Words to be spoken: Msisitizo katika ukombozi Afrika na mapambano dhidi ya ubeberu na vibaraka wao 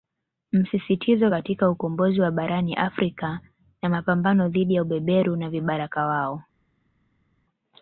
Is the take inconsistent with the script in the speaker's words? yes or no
yes